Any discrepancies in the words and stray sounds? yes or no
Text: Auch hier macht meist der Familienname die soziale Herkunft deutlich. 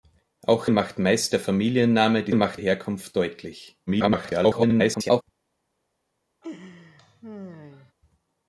yes